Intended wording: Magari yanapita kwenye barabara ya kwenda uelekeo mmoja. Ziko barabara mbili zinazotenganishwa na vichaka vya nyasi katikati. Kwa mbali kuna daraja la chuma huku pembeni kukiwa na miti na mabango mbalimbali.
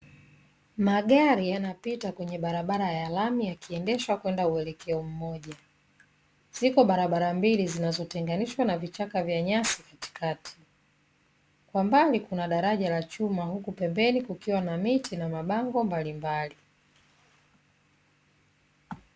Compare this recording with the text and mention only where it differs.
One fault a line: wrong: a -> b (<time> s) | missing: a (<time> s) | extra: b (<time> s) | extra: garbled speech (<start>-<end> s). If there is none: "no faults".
extra: lami yakiendeshwa (3.1 s)